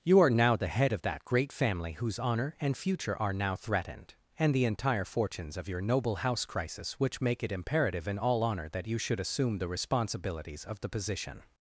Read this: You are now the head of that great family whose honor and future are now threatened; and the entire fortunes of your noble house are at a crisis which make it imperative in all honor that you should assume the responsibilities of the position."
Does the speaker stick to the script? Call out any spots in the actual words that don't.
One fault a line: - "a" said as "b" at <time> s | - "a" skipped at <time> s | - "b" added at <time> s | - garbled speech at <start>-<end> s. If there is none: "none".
- "are at a" skipped at 6.4 s